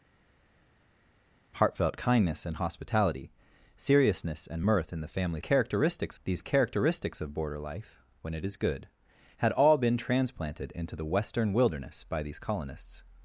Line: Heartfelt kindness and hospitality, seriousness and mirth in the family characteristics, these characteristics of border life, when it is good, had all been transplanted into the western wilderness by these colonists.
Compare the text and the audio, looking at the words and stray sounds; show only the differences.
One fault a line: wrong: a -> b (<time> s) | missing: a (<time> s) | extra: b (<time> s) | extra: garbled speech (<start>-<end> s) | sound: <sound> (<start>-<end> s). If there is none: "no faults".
no faults